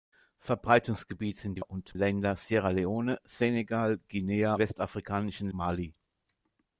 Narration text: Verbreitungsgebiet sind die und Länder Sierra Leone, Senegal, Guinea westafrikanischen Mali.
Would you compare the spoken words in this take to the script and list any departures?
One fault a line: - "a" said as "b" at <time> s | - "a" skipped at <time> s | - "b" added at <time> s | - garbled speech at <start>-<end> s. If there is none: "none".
none